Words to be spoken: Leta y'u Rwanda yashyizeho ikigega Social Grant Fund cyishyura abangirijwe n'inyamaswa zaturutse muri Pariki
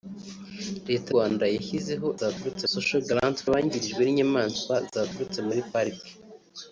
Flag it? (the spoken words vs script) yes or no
yes